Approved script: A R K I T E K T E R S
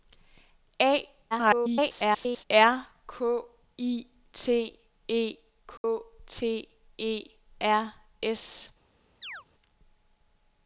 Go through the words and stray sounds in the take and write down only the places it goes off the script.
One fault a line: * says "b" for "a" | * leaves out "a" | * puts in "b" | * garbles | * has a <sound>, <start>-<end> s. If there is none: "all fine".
* garbles
* has a dropout, 5.8-5.8 s
* has a chirp, 9.2-9.4 s